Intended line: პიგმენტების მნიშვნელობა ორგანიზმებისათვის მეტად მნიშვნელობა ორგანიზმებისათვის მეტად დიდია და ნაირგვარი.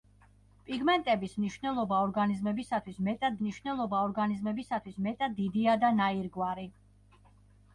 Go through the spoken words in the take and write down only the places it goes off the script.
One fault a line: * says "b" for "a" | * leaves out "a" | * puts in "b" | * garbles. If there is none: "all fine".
all fine